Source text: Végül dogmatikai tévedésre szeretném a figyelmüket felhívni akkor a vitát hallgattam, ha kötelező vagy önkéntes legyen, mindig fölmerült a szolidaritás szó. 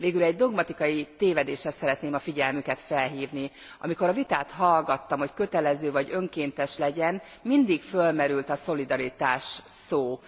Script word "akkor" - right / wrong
wrong